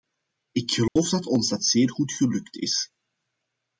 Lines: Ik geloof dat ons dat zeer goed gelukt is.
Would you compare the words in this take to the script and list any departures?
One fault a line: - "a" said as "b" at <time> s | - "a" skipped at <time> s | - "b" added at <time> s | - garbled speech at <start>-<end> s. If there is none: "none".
none